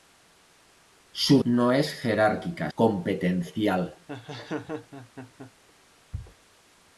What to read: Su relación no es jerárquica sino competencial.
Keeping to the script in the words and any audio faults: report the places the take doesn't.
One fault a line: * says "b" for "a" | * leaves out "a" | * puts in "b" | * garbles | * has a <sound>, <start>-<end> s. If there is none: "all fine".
* leaves out "relación"
* leaves out "sino"
* has a laugh, 4.1-5.5 s